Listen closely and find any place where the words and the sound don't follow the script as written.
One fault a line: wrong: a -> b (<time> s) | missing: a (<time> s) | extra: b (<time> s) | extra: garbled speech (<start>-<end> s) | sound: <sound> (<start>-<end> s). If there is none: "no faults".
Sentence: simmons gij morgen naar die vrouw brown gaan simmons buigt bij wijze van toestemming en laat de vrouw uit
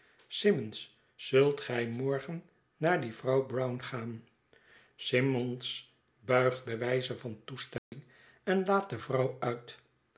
extra: zult (1.1 s)
sound: dropout (7.8-7.9 s)